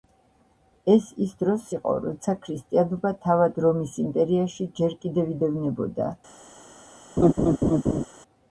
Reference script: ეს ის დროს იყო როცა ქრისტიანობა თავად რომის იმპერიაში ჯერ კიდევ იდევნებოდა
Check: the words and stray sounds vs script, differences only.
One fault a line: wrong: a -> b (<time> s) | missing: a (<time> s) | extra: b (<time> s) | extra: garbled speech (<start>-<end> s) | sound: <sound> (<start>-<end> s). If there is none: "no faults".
sound: laugh (7.2-8.0 s)